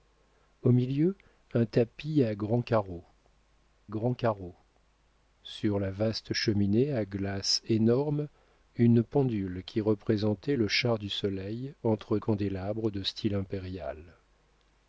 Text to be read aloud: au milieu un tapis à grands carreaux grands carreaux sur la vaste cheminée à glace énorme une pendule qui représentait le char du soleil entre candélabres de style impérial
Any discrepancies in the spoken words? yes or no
no